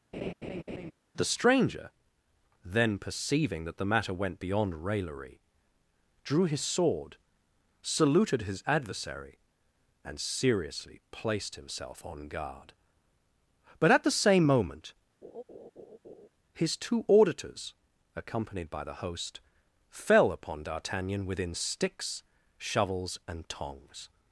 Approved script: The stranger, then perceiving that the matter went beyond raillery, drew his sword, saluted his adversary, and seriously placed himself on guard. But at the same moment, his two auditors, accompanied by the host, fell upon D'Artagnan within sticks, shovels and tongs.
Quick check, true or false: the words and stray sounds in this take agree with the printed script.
false